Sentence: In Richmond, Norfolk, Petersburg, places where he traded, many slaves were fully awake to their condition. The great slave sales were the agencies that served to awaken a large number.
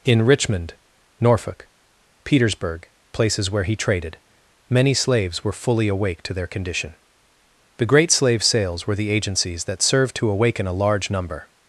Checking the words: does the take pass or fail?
pass